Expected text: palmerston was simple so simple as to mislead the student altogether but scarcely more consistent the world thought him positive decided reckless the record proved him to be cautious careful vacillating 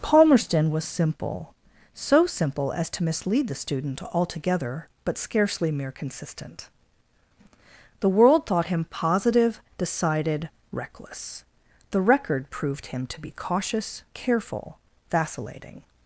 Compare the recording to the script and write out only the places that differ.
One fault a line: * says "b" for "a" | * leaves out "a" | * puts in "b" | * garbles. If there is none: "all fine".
* says "mere" for "more"